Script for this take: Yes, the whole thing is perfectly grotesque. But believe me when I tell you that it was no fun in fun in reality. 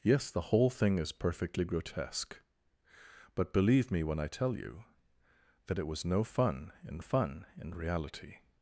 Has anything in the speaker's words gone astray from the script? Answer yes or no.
no